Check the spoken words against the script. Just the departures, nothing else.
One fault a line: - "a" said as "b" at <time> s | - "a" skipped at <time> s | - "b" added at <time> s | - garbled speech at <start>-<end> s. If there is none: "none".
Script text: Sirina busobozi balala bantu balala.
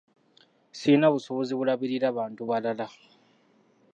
- "balala" said as "bulabirira" at 1.6 s